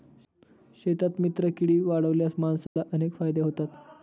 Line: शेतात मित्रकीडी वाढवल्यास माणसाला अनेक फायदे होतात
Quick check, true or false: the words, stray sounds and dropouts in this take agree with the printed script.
false